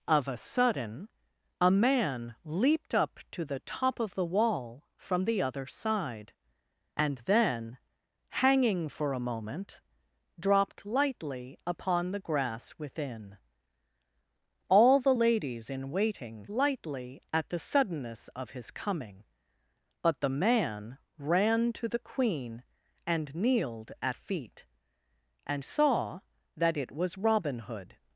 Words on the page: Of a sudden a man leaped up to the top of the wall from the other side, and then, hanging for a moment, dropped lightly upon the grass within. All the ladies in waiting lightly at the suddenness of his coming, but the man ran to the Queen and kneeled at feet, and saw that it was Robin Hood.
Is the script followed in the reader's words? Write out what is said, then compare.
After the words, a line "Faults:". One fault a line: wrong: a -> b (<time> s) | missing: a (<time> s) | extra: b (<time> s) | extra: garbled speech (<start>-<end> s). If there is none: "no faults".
Of a sudden a man leaped up to the top of the wall from the other side, and then, hanging for a moment, dropped lightly upon the grass within. All the ladies in waiting lightly at the suddenness of his coming, but the man ran to the Queen and kneeled at feet, and saw that it was Robin Hood.
Faults:
no faults